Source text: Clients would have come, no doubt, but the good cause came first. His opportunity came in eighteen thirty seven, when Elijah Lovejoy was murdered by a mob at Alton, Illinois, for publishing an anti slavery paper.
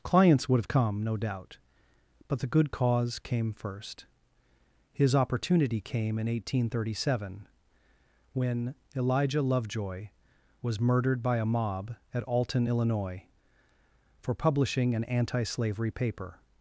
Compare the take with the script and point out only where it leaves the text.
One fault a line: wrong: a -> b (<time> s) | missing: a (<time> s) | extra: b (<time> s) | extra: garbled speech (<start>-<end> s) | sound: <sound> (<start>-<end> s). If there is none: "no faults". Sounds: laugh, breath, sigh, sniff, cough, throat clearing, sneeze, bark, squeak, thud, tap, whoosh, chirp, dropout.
no faults